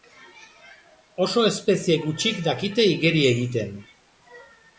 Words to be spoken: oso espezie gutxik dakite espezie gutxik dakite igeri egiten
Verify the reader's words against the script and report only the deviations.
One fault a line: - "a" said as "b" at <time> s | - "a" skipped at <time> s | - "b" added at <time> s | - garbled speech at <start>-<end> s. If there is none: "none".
- "espezie gutxik dakite" skipped at 2.9 s